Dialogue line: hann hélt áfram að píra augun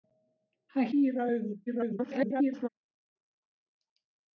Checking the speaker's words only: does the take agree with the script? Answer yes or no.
no